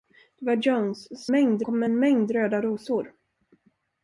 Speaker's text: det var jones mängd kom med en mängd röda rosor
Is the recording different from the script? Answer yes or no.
no